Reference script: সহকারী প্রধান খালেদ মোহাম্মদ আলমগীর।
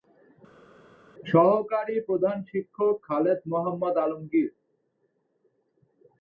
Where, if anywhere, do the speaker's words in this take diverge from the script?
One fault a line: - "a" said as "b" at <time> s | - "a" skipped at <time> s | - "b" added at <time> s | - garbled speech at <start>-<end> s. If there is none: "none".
- "শিক্ষক" added at 2.5 s